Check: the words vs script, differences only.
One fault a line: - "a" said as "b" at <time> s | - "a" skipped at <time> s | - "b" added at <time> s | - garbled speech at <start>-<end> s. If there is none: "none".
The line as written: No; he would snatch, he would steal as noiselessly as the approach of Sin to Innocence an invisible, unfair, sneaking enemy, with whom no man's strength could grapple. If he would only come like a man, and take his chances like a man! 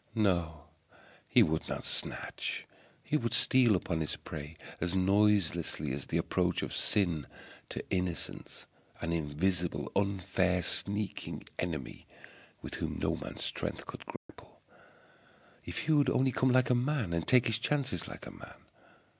- "not" added at 1.7 s
- "upon his prey" added at 3.8 s